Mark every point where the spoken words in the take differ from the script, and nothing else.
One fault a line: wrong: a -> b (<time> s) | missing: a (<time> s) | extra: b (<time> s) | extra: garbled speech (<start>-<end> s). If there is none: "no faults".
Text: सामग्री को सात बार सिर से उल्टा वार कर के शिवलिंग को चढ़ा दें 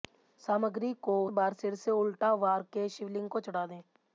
missing: सात (1.2 s)
missing: कर (2.6 s)